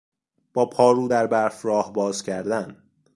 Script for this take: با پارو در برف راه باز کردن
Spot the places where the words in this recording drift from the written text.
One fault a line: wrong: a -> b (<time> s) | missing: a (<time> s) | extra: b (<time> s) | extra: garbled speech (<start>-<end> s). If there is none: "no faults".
no faults